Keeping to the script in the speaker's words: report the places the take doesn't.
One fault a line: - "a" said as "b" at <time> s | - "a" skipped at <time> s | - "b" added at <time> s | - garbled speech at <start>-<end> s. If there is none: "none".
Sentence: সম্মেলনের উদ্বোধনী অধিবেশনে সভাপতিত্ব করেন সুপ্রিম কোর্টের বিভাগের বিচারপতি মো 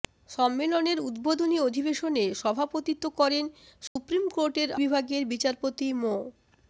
none